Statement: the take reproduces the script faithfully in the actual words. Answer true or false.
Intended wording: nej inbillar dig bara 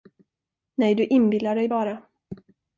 false